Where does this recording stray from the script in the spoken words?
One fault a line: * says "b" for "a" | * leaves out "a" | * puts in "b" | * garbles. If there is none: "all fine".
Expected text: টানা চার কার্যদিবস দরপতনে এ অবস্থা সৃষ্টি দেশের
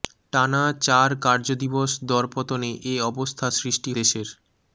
all fine